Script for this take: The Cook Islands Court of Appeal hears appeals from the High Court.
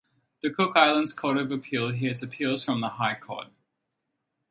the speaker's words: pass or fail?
pass